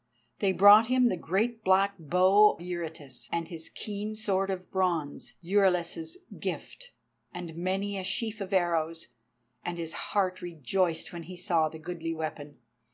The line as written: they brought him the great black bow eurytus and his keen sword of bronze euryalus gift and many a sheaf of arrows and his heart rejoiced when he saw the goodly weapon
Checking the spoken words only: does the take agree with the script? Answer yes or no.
yes